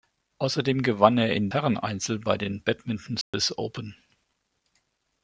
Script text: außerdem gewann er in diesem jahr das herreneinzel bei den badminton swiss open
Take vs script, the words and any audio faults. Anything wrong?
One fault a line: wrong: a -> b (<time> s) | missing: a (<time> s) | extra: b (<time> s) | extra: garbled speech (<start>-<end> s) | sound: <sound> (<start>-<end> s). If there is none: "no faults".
missing: diesem jahr das (1.5 s)
sound: dropout (3.2-3.3 s)